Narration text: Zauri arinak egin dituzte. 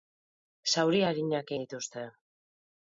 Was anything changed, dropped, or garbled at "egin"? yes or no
yes